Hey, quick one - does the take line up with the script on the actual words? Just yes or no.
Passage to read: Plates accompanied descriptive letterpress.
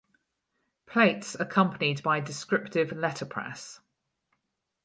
no